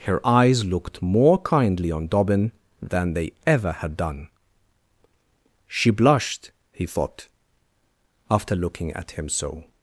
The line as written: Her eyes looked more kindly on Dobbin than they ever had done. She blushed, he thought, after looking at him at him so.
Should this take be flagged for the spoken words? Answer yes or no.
yes